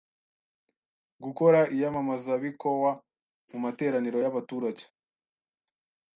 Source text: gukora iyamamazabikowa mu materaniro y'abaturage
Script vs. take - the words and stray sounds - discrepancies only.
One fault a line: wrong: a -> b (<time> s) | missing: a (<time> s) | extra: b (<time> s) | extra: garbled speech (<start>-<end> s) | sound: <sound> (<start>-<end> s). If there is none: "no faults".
no faults